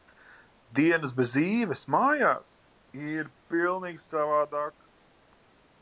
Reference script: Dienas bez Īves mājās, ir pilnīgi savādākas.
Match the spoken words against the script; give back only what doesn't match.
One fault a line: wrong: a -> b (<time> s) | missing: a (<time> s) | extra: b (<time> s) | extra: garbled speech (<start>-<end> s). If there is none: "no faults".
no faults